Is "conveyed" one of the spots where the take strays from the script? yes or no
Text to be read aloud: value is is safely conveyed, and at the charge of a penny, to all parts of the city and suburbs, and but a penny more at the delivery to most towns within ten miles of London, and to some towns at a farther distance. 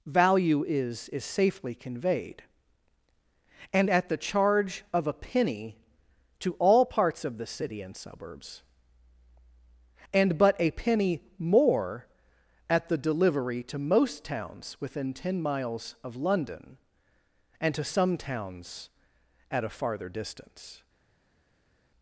no